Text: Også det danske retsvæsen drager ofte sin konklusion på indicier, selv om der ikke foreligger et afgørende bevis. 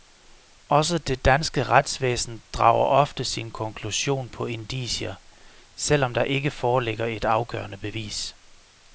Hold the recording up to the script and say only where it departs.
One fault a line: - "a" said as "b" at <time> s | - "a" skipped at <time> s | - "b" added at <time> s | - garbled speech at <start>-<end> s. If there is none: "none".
none